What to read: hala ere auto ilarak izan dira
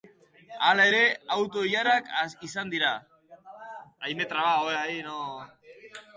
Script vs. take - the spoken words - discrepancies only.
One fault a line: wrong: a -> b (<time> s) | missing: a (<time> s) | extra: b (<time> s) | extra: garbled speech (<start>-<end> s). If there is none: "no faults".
no faults